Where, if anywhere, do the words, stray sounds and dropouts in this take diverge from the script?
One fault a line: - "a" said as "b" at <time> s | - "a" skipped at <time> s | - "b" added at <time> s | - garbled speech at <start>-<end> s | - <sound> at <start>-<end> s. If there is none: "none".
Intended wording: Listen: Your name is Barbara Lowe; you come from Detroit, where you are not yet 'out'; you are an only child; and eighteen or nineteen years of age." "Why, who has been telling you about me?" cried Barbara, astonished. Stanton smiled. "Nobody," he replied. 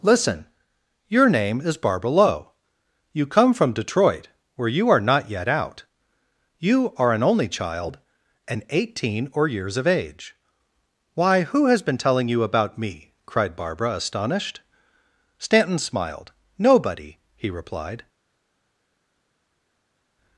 - "nineteen" skipped at 9.5 s